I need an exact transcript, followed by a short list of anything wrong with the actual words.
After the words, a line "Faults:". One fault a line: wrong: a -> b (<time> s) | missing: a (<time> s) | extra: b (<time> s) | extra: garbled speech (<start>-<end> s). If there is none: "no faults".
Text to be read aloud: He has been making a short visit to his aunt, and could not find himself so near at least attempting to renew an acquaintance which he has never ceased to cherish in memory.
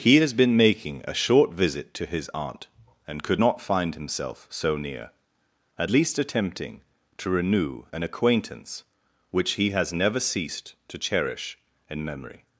He has been making a short visit to his aunt, and could not find himself so near at least attempting to renew an acquaintance which he has never ceased to cherish in memory.
Faults:
no faults